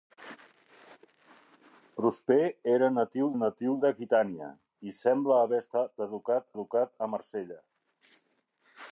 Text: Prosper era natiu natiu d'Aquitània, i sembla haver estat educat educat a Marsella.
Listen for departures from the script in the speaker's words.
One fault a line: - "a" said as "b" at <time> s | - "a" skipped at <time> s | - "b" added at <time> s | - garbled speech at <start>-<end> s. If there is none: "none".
none